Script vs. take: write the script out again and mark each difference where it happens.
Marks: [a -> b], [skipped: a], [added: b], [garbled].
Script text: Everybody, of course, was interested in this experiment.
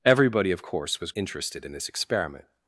Everybody, of course, was interested in this experiment.